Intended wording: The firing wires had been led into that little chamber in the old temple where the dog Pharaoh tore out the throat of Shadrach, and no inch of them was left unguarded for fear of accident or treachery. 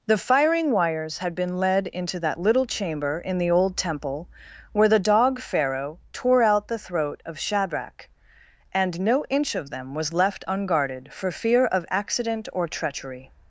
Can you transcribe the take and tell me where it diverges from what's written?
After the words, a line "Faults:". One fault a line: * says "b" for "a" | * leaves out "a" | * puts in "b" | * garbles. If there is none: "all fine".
The firing wires had been led into that little chamber in the old temple where the dog Pharaoh tore out the throat of Shadrach, and no inch of them was left unguarded for fear of accident or treachery.
Faults:
all fine